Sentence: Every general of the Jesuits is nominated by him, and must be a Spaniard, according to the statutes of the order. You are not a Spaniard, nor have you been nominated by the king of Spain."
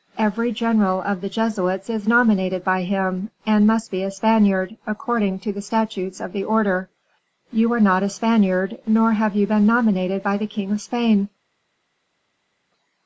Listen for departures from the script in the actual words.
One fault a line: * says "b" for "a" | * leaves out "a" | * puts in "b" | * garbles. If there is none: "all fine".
all fine